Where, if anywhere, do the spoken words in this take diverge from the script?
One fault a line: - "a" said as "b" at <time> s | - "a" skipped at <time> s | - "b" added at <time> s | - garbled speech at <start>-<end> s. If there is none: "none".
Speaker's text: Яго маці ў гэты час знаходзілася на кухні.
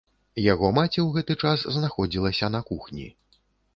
none